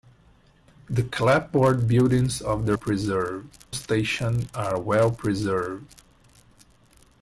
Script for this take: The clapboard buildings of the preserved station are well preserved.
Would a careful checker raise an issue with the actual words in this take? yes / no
no